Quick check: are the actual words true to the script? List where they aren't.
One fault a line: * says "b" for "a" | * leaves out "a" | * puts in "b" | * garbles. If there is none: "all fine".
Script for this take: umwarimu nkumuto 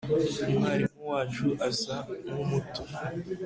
* puts in "wacu asa"